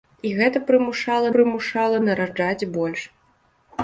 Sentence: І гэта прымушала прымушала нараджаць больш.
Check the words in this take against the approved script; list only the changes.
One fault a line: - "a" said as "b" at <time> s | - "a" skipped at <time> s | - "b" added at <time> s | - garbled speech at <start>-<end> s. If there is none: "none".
none